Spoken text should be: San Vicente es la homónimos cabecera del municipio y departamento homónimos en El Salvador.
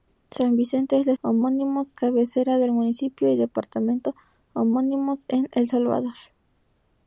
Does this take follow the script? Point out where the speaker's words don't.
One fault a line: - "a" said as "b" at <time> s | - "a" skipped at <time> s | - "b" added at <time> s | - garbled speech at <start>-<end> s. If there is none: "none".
none